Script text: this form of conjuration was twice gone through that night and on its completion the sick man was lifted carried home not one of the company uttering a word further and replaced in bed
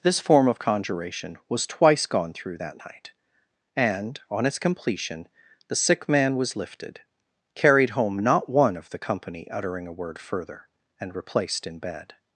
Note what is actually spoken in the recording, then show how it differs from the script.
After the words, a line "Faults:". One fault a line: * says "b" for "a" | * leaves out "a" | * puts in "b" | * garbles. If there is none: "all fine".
this form of conjuration was twice gone through that night and on its completion the sick man was lifted carried home not one of the company uttering a word further and replaced in bed
Faults:
all fine